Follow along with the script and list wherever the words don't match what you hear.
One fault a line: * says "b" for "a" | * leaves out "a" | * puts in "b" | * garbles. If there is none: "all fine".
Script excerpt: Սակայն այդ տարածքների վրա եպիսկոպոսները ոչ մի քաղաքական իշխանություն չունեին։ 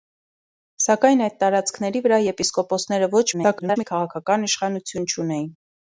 * garbles